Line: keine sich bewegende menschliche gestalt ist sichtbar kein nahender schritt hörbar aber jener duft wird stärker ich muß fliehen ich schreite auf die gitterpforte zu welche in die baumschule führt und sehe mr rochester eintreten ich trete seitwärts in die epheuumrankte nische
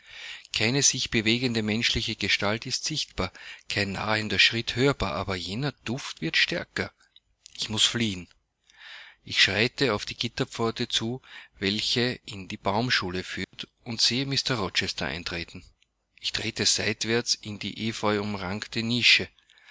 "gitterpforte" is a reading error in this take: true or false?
false